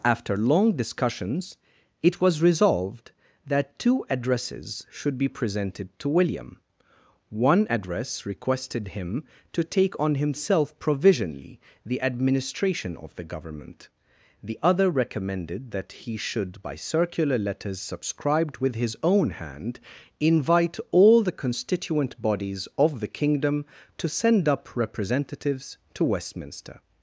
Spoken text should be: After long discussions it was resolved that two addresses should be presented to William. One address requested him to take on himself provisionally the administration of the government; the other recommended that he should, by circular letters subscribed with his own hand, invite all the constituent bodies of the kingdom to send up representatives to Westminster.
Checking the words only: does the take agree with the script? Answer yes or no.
yes